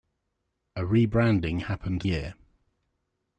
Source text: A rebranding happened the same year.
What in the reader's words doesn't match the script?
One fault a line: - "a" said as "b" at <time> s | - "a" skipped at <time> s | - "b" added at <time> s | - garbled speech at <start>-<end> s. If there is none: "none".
- "the same" skipped at 2.0 s